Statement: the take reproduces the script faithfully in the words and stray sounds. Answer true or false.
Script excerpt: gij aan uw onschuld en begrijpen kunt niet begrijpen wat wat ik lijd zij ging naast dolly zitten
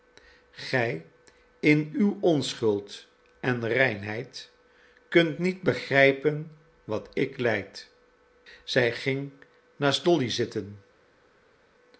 false